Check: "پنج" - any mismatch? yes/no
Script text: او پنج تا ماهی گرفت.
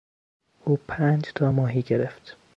no